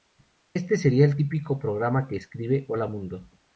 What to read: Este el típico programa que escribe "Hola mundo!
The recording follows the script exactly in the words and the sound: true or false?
false